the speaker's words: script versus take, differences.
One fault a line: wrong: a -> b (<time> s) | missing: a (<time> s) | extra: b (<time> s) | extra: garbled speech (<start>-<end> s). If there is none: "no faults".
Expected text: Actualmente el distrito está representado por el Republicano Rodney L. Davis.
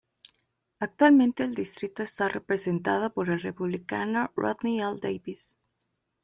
no faults